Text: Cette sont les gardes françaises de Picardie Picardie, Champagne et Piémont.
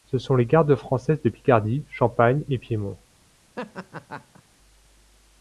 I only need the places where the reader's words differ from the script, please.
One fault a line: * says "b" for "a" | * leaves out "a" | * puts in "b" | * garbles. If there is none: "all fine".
* says "Ce" for "Cette"
* leaves out "Picardie"